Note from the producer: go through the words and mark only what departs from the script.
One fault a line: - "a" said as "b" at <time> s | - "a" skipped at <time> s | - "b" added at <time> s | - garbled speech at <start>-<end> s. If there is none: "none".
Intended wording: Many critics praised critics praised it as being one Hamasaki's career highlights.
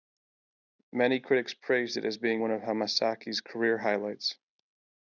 - "critics praised" skipped at 2.0 s
- "of" added at 2.5 s